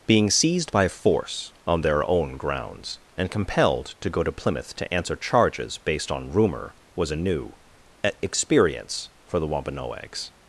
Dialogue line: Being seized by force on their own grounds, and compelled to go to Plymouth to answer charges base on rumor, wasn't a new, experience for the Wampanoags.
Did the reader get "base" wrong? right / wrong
wrong